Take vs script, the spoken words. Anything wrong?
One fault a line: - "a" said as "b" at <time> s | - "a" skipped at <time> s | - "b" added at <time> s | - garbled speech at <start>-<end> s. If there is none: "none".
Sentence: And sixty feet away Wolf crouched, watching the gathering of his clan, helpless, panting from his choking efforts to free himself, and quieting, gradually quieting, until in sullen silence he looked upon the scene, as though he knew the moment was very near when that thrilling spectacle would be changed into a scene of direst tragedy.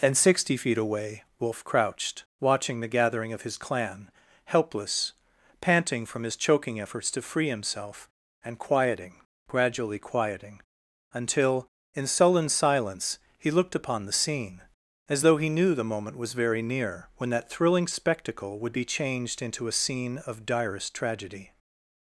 none